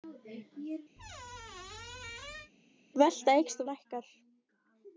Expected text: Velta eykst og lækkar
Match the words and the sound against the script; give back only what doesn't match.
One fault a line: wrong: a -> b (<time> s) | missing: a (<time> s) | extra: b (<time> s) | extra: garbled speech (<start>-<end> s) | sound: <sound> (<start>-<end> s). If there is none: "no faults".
sound: squeak (1.0-2.5 s)